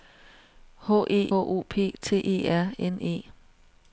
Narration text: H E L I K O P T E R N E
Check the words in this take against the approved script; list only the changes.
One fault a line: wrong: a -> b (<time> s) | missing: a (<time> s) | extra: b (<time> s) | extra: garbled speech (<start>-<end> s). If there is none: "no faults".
missing: L I K (1.3 s)